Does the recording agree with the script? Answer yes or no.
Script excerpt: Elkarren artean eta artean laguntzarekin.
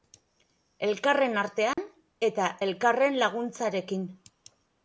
no